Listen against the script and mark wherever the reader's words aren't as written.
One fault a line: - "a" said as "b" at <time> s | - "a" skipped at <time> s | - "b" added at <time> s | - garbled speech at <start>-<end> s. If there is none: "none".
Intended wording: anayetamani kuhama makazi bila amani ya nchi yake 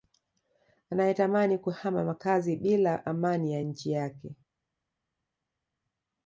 none